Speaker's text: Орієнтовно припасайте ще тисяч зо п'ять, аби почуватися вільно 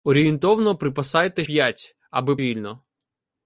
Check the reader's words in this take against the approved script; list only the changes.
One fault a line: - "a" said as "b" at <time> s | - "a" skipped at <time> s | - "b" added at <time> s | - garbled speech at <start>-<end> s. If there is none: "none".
- "ще тисяч зо" skipped at 1.4 s
- "почуватися" skipped at 2.4 s